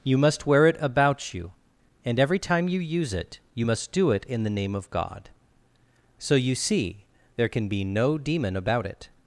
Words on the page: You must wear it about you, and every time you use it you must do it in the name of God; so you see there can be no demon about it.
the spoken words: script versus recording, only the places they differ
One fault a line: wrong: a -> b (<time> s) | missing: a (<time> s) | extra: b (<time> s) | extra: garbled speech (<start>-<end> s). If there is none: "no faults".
no faults